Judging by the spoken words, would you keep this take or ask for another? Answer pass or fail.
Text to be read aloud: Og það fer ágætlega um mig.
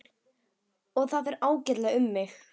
pass